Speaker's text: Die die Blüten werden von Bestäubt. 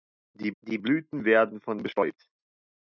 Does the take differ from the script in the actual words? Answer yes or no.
no